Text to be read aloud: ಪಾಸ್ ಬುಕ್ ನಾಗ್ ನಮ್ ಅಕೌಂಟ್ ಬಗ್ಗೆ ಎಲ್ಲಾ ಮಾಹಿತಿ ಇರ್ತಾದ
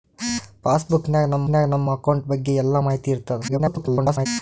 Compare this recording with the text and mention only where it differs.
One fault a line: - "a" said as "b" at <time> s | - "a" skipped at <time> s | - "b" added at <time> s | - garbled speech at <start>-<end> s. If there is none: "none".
- "ನಾಗ್ ನಮ್" added at 1.5 s
- garbled speech at 3.5-4.3 s